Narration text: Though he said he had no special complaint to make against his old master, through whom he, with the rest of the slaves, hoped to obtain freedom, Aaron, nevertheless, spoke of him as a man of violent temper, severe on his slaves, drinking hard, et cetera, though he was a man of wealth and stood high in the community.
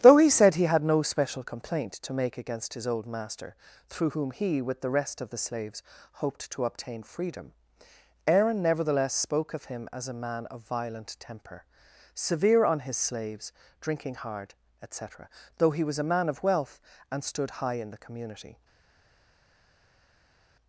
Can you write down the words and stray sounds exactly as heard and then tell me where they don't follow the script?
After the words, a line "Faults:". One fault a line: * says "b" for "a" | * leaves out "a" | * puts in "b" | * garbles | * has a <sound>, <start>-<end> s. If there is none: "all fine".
Though he said he had no special complaint to make against his old master, through whom he, with the rest of the slaves, hoped to obtain freedom, Aaron, nevertheless, spoke of him as a man of violent temper, severe on his slaves, drinking hard, et cetera, though he was a man of wealth and stood high in the community.
Faults:
all fine